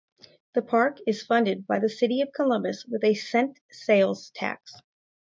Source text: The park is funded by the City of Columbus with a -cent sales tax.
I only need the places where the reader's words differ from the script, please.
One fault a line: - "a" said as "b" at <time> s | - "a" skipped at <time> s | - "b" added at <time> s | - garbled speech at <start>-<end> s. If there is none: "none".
none